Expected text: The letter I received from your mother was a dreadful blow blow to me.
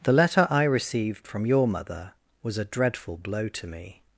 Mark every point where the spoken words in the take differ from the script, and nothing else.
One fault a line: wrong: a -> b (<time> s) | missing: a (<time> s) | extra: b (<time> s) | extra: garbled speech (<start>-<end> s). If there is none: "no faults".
missing: blow (3.5 s)